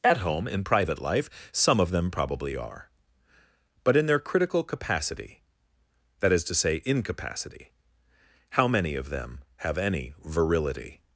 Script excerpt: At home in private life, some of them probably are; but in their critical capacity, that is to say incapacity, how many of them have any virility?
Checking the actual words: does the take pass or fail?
pass